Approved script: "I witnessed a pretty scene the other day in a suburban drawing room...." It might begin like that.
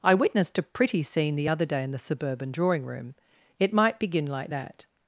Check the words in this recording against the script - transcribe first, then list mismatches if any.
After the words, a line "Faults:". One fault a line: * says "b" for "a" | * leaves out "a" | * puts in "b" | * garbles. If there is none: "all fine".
"I witnessed a pretty scene the other day in the suburban drawing room...." It might begin like that.
Faults:
* says "the" for "a"